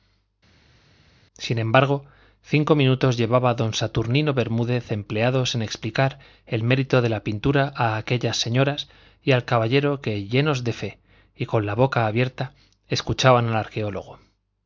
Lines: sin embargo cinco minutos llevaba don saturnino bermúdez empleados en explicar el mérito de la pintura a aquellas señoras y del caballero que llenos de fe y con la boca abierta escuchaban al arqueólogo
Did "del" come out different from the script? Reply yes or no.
yes